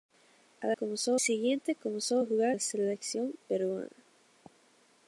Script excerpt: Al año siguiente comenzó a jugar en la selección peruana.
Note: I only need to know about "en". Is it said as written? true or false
false